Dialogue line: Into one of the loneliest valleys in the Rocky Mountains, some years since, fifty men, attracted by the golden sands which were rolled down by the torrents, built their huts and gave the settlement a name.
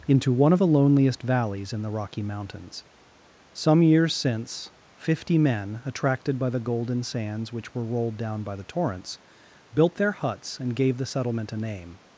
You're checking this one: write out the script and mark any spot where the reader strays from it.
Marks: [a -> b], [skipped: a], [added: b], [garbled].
Into one of the loneliest valleys in the Rocky Mountains, some years since, fifty men, attracted by the golden sands which were rolled down by the torrents, built their huts and gave the settlement a name.